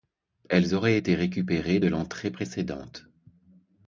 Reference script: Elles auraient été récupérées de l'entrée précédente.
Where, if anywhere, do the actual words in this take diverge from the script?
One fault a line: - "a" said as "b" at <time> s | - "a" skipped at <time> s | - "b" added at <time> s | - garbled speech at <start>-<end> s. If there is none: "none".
none